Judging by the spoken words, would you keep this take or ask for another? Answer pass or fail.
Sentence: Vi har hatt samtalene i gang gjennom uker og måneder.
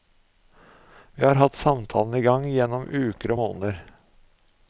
pass